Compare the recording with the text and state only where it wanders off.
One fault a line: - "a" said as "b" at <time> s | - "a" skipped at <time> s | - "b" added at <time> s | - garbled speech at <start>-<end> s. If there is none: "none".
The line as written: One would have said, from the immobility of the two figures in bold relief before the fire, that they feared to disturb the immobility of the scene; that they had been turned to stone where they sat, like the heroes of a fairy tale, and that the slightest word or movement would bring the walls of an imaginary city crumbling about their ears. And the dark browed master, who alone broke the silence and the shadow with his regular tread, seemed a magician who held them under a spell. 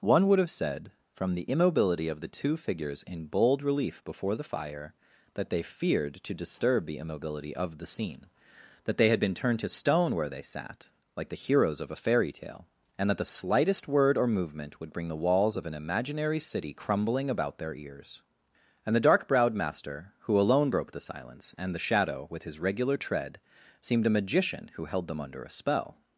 none